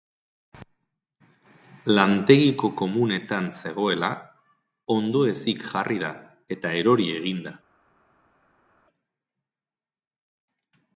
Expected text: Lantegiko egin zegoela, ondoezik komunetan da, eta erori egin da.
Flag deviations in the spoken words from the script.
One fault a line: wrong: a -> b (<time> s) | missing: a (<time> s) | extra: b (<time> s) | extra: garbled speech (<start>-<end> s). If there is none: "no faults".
wrong: egin -> komunetan (2.8 s)
wrong: komunetan -> jarri (5.7 s)